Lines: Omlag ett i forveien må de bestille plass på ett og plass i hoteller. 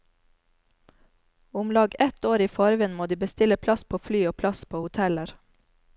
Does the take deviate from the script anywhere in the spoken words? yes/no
yes